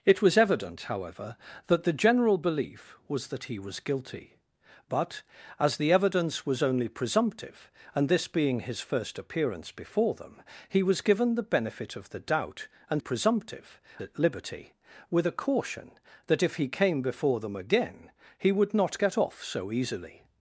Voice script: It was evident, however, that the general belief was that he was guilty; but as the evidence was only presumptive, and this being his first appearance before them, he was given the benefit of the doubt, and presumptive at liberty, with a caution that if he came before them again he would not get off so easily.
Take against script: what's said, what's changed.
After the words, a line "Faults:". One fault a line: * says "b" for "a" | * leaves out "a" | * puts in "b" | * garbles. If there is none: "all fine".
It was evident, however, that the general belief was that he was guilty; but as the evidence was only presumptive, and this being his first appearance before them, he was given the benefit of the doubt, and presumptive at liberty, with a caution that if he came before them again he would not get off so easily.
Faults:
all fine